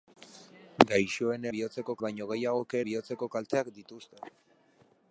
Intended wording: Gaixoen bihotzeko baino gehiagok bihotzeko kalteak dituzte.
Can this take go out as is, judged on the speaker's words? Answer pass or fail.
pass